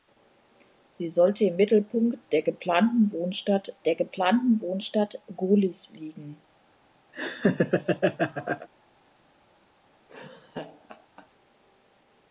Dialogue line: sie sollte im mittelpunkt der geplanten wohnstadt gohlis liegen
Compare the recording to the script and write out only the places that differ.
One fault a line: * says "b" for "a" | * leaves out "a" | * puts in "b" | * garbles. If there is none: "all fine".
* puts in "der geplanten wohnstadt"